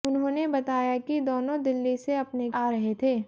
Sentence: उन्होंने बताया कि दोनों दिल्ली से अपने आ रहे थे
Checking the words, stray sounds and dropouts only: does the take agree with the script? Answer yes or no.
yes